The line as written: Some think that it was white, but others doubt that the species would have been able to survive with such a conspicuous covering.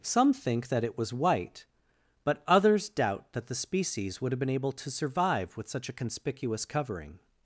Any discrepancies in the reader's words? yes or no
no